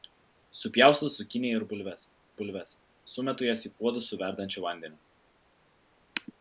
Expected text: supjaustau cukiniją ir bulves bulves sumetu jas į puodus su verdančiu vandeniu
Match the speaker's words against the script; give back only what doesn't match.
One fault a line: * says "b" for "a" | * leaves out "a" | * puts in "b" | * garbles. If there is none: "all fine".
all fine